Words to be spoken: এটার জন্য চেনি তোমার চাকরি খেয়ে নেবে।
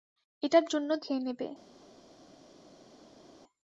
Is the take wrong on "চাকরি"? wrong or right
wrong